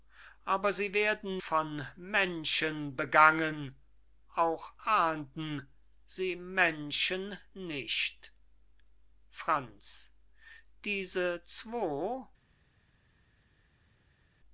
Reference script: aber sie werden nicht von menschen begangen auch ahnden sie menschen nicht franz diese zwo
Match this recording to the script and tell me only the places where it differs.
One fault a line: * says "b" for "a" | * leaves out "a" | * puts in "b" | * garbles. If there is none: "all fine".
* leaves out "nicht"